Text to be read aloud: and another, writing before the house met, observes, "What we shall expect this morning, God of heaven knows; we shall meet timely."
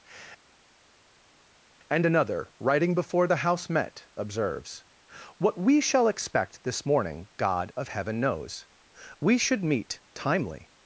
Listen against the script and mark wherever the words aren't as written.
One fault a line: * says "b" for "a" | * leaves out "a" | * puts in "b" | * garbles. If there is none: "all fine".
* says "should" for "shall"